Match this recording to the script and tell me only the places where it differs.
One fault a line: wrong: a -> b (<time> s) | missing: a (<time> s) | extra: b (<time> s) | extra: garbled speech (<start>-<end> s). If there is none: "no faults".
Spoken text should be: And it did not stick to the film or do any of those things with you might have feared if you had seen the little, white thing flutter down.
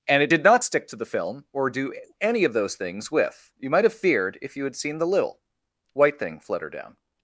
no faults